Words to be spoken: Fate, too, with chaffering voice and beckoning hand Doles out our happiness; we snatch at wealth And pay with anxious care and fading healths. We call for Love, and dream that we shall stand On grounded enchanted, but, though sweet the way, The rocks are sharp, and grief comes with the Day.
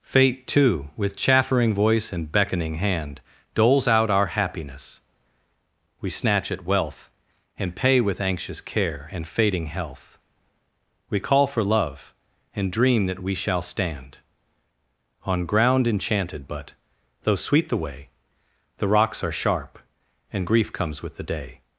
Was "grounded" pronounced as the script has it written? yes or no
no